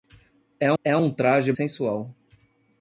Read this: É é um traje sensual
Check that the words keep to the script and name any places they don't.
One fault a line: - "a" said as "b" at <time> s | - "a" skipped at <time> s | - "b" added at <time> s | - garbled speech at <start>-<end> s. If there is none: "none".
none